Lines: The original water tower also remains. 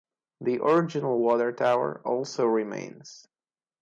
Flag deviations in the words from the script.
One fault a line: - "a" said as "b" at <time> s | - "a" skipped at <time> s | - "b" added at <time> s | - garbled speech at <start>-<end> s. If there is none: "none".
none